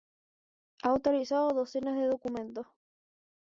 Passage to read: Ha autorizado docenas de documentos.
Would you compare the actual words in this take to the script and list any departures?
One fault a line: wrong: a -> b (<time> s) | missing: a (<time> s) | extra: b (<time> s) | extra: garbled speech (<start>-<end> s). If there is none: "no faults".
no faults